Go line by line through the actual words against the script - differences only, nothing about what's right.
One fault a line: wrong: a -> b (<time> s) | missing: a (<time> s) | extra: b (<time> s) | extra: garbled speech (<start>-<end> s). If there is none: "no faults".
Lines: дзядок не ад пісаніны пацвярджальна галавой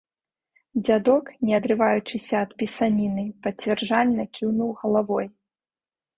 extra: адрываючыся (1.6 s)
extra: кіўнуў (4.4 s)